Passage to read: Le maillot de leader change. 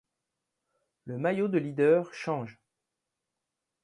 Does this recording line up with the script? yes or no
yes